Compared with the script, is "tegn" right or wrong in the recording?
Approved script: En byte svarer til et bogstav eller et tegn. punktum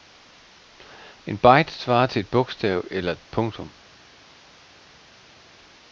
wrong